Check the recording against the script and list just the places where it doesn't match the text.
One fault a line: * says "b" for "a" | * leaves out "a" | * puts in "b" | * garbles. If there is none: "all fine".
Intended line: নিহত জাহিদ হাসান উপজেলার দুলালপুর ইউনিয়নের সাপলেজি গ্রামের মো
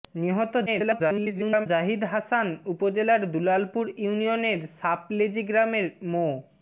* garbles